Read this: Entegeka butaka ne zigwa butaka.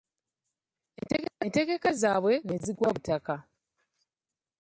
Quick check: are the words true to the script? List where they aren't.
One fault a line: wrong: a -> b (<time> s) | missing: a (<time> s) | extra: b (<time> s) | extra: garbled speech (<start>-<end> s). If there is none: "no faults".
wrong: butaka -> zaabwe (2.0 s)